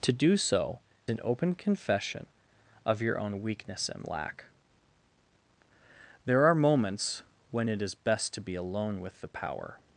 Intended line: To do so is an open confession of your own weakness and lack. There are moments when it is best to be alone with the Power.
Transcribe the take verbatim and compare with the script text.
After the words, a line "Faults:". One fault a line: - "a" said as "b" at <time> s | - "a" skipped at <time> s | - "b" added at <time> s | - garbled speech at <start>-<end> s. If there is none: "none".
To do so an open confession of your own weakness and lack. There are moments when it is best to be alone with the Power.
Faults:
- "is" skipped at 0.8 s